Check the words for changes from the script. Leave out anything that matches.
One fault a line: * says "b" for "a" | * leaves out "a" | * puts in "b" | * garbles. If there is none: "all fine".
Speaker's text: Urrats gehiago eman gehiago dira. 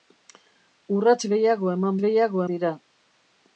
all fine